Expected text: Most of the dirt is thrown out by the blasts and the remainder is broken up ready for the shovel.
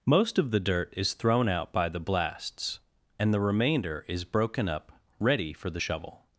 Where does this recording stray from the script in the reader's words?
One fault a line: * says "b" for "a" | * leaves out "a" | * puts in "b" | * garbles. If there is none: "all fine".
all fine